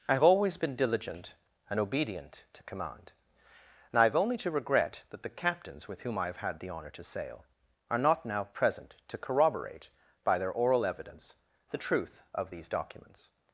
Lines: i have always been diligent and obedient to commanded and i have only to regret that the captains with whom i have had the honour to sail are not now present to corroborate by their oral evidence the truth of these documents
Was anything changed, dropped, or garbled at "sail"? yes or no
no